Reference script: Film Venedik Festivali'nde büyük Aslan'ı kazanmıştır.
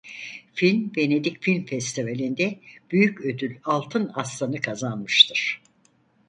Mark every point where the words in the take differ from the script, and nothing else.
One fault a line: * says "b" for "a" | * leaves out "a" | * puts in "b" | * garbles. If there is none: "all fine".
* puts in "Film"
* puts in "ödül Altın"